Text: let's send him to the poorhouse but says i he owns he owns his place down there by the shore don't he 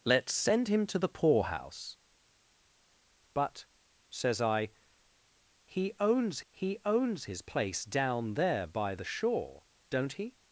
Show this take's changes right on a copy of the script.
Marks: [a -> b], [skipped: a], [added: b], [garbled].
let's send him to the poorhouse but says i he owns he owns his place down there by the shore don't he